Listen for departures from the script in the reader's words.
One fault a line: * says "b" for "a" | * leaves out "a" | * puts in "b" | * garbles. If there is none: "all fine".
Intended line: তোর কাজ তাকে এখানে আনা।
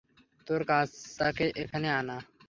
all fine